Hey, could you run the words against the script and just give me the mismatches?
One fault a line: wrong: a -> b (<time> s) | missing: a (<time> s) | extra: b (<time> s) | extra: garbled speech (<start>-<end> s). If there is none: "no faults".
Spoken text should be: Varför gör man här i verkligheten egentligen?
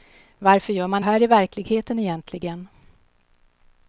no faults